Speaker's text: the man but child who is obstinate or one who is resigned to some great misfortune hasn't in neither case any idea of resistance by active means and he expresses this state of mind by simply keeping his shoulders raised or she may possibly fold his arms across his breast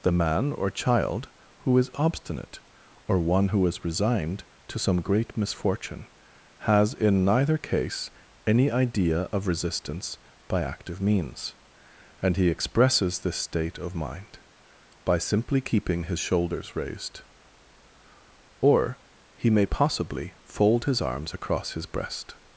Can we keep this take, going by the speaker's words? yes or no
no